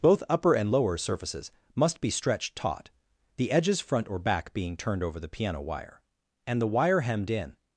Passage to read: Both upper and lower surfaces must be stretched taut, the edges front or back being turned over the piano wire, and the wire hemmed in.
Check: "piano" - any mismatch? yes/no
no